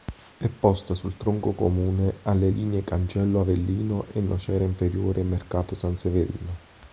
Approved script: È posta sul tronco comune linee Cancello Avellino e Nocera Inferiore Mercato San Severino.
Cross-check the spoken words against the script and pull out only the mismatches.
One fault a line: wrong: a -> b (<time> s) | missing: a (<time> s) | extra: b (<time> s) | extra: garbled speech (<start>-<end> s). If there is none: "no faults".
extra: alle (2.2 s)